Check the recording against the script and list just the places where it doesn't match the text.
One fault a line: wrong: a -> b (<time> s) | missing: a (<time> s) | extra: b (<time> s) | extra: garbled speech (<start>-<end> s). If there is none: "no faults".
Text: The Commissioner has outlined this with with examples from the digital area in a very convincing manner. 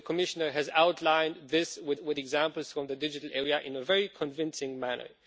no faults